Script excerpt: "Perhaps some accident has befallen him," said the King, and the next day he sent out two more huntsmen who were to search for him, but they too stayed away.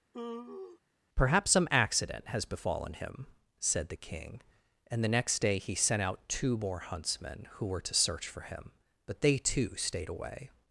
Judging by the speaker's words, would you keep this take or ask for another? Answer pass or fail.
pass